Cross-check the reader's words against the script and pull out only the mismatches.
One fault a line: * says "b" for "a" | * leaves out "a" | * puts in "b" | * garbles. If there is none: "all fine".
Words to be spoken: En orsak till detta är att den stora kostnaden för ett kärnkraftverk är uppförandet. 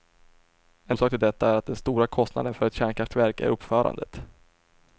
all fine